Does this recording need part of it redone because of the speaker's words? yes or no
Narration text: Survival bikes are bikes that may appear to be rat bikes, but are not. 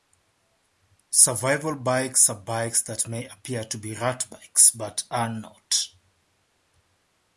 no